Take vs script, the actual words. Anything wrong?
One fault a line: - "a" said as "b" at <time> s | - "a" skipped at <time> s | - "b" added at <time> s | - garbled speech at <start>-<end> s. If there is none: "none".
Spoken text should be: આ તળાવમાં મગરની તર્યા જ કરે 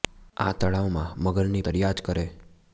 none